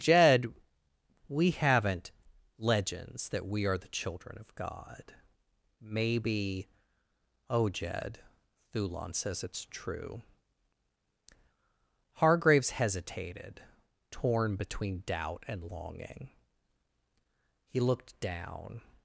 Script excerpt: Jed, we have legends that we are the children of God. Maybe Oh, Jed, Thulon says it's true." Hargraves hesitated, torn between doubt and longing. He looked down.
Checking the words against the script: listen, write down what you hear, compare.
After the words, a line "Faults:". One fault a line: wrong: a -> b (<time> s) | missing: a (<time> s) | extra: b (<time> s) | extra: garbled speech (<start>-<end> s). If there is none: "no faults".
Jed, we haven't legends that we are the children of God. Maybe Oh, Jed, Thulon says it's true." Hargraves hesitated, torn between doubt and longing. He looked down.
Faults:
wrong: have -> haven't (1.5 s)